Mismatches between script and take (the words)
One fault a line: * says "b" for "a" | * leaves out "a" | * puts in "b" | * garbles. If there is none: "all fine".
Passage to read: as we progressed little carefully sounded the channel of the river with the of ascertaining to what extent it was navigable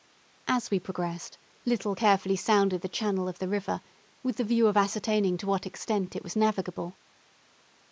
* puts in "view"